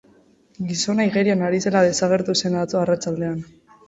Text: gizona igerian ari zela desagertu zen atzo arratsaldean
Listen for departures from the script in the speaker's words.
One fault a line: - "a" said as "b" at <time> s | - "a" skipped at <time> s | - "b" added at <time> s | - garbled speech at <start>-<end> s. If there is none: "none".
none